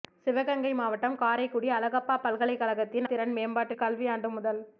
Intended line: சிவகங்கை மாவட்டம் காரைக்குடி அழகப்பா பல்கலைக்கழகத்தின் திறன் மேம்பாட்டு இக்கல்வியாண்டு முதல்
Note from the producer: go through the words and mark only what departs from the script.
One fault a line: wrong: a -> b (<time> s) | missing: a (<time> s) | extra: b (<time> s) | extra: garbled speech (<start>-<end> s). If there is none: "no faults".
no faults